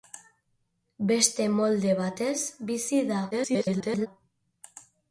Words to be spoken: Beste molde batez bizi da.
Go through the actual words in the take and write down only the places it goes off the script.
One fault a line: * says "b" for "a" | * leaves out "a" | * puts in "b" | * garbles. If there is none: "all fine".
* garbles